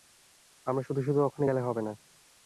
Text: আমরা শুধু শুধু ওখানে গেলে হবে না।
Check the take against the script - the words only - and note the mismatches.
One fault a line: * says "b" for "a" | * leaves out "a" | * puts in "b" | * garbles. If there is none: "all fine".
all fine